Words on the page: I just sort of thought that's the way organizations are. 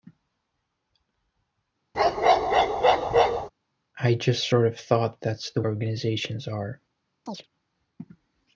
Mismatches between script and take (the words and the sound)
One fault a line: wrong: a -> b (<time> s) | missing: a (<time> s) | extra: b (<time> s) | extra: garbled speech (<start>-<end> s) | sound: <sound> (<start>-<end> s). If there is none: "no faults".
sound: bark (1.9-3.5 s)
missing: way (5.6 s)
sound: chirp (7.3-7.5 s)